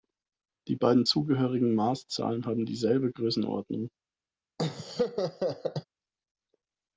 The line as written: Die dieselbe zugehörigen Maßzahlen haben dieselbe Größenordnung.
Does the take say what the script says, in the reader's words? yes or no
no